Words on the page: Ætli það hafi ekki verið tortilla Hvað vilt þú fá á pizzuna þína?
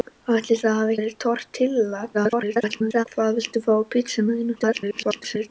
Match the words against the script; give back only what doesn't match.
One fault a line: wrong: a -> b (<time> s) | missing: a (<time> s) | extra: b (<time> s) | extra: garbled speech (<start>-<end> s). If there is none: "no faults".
missing: ekki (0.9 s)
extra: garbled speech (2.1-3.1 s)
extra: garbled speech (4.6-5.5 s)